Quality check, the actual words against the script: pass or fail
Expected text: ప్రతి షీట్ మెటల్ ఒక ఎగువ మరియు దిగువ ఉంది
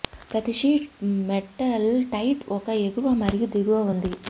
fail